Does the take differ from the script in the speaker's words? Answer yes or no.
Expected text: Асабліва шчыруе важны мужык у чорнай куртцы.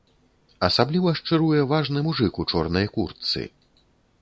no